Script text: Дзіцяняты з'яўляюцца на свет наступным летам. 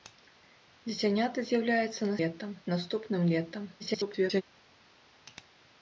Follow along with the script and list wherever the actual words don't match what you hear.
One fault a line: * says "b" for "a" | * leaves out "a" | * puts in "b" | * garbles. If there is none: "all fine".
* says "летам" for "свет"
* garbles